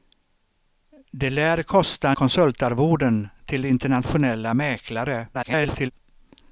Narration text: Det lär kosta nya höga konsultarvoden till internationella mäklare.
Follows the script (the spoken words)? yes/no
no